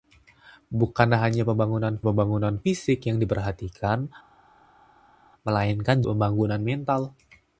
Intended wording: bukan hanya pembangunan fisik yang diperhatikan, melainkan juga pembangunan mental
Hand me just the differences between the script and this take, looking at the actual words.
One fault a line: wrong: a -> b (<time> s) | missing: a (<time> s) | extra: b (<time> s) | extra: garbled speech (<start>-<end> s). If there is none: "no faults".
extra: pembangunan (2.0 s)
missing: juga (6.1 s)